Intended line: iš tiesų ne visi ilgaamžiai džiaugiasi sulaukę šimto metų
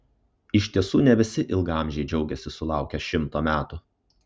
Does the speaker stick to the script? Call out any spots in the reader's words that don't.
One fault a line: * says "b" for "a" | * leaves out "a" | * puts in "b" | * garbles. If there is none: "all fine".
all fine